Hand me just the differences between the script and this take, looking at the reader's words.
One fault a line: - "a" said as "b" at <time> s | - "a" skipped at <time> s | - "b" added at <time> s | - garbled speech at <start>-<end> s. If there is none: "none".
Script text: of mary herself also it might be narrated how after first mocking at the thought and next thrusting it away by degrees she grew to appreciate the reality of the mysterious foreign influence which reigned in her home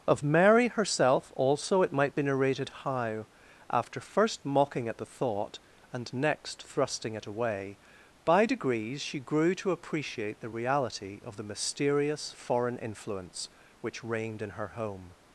none